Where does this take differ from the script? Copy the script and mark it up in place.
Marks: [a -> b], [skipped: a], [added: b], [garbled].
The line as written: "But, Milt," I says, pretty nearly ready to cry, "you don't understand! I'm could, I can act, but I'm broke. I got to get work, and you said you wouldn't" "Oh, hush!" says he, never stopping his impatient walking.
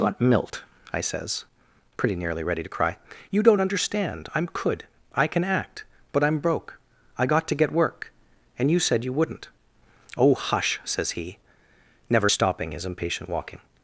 "But, Milt," I says, pretty nearly ready to cry, "you don't understand! I'm could, I can act, but I'm broke. I got to get work, and you said you wouldn't" "Oh, hush!" says he, never stopping his impatient walking.